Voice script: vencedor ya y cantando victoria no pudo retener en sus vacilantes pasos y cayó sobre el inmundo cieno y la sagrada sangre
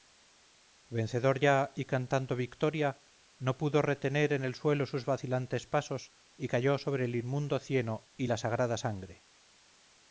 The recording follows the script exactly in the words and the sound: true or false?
false